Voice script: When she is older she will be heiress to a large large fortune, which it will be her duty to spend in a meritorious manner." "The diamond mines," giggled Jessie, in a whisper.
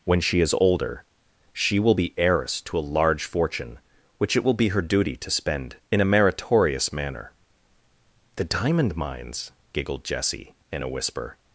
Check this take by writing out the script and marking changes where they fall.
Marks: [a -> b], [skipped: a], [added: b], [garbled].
When she is older she will be heiress to a large [skipped: large] fortune, which it will be her duty to spend in a meritorious manner." "The diamond mines," giggled Jessie, in a whisper.